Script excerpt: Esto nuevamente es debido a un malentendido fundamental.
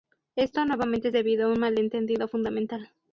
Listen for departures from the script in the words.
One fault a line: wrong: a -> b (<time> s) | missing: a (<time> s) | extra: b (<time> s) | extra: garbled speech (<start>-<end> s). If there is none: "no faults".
no faults